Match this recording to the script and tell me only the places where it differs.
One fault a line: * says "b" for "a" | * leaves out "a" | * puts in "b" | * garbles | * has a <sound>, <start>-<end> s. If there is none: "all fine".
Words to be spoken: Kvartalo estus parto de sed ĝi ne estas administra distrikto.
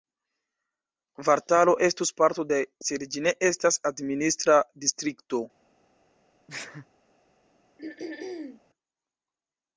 * has a sneeze, 6.5-6.9 s
* has a throat clearing, 7.8-8.6 s